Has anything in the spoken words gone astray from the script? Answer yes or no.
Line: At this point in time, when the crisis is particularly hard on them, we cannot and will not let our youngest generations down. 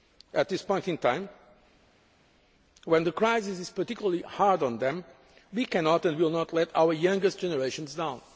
no